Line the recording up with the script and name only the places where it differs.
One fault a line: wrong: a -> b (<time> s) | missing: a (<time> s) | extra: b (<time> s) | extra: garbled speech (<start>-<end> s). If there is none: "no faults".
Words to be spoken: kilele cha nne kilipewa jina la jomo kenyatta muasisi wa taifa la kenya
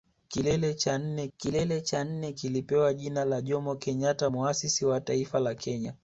extra: kilele cha nne (1.4 s)